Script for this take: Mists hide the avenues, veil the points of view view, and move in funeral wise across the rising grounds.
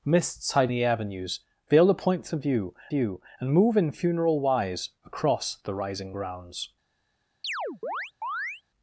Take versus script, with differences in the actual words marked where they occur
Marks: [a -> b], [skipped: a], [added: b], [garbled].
Mists hide the avenues, veil the points of view view, and move in funeral wise across the rising grounds.